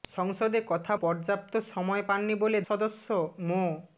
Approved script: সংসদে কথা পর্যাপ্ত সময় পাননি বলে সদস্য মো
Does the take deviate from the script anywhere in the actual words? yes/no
no